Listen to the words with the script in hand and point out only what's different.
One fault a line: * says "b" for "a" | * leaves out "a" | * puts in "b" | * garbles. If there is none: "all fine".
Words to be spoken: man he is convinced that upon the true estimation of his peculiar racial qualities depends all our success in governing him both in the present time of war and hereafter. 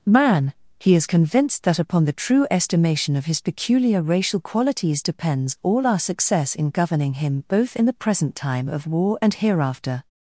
all fine